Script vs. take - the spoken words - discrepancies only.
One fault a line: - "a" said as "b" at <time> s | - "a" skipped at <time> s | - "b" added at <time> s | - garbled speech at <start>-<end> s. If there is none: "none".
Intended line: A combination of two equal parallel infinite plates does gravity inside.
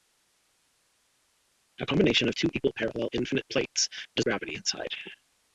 none